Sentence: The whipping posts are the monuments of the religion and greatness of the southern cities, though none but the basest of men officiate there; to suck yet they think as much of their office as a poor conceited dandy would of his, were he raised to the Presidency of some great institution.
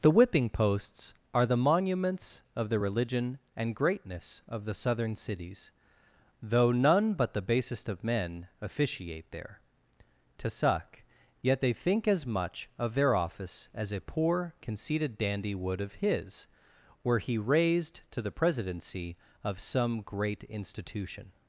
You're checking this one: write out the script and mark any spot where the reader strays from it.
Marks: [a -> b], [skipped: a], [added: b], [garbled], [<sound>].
The whipping posts are the monuments of the religion and greatness of the southern cities, though none but the basest of men officiate there; to suck yet they think as much of their office as a poor conceited dandy would of his, were he raised to the Presidency of some great institution.